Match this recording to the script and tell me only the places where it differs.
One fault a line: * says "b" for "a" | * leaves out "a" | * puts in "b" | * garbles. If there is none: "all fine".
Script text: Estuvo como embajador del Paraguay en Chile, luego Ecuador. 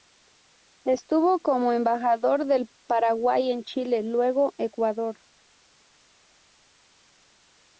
all fine